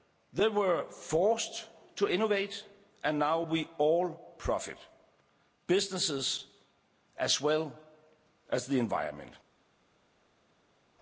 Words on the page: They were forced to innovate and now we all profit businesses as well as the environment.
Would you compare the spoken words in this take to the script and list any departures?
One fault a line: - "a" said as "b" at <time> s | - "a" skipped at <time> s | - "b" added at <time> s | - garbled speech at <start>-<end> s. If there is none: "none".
none